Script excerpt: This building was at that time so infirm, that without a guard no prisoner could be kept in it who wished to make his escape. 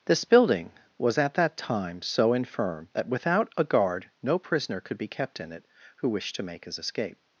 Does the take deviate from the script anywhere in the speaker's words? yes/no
no